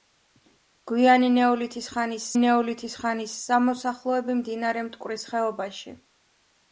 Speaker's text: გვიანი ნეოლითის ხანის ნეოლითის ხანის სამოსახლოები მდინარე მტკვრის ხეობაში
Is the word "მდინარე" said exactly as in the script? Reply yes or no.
yes